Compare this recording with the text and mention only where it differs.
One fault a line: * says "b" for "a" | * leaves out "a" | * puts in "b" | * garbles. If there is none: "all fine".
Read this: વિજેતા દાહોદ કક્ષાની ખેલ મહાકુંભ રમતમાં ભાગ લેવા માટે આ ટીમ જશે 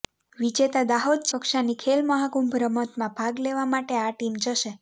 all fine